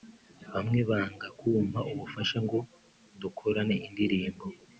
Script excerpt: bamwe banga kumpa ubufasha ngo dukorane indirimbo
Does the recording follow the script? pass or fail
pass